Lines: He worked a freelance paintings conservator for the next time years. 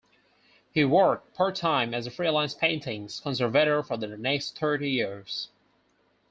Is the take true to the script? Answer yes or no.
no